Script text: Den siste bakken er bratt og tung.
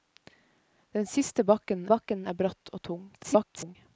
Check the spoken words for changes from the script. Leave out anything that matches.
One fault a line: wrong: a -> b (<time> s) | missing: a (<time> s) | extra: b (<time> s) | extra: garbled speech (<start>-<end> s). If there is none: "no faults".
extra: bakken (1.9 s)
extra: garbled speech (3.1-3.8 s)